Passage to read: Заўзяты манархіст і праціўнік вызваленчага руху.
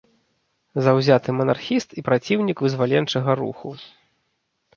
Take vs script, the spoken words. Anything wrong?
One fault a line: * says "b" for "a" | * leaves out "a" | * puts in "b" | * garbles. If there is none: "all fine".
all fine